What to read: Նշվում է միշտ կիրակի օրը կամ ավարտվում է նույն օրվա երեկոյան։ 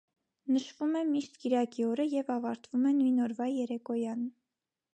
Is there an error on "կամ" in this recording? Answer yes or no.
yes